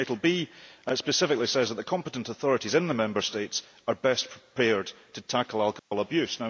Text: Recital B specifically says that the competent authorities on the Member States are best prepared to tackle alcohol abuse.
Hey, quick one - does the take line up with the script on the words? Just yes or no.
no